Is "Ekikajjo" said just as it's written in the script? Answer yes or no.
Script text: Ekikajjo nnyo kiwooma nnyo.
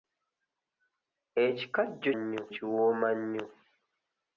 yes